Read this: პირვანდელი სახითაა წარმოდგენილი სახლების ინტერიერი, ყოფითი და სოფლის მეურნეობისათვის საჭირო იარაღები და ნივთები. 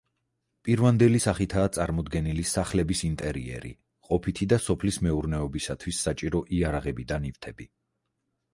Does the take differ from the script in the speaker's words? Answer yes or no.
no